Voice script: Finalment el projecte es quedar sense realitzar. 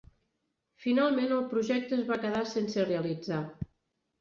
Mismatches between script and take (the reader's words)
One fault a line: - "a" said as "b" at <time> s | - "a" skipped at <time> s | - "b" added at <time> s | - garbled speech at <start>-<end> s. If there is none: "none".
- "va" added at 2.1 s